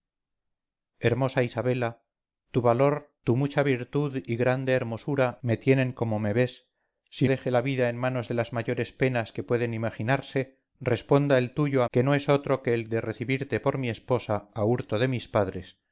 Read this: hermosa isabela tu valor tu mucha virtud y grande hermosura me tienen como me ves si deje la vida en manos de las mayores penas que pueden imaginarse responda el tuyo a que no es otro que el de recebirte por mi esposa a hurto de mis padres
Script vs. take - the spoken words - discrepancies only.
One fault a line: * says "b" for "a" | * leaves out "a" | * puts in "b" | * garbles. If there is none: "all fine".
all fine